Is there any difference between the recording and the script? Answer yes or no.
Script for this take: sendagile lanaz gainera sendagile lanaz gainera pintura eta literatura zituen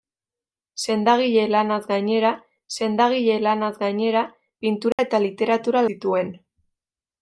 no